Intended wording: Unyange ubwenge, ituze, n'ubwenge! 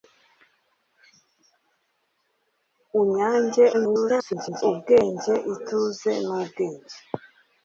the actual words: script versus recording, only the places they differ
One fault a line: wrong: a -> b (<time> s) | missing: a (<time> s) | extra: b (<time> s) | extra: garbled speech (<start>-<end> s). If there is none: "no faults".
extra: garbled speech (3.7-4.6 s)